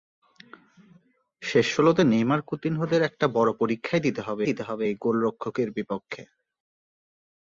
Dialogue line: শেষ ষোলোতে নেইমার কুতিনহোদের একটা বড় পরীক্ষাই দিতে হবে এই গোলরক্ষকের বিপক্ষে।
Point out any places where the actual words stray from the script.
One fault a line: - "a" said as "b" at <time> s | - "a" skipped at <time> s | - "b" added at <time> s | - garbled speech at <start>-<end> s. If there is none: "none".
- "দিতে হবে" added at 4.4 s